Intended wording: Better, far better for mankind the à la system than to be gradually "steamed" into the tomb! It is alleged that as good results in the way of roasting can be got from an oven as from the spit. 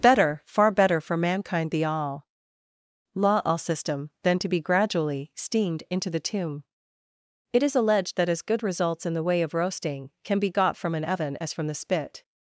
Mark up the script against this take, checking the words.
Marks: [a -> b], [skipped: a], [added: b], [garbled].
Better, far better for mankind the [à la -> all law all] system than to be gradually "steamed" into the tomb! It is alleged that as good results in the way of roasting can be got from an oven as from the spit.